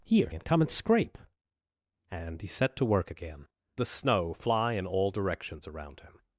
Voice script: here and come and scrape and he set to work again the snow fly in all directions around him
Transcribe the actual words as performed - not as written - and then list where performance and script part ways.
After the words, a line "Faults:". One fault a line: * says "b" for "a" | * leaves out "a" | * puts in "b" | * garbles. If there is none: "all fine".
here and come and scrape and he set to work again the snow fly in all directions around him
Faults:
all fine